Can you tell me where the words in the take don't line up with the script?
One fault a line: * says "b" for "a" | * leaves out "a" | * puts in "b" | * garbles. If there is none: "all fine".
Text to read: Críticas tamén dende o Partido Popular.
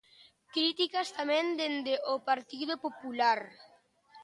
all fine